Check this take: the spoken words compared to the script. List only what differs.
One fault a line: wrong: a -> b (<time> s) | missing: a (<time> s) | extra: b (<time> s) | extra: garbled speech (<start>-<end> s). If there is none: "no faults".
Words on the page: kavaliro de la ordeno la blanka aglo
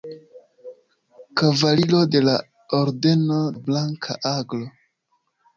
no faults